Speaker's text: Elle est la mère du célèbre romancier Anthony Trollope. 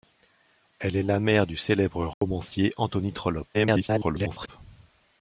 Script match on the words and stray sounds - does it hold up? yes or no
no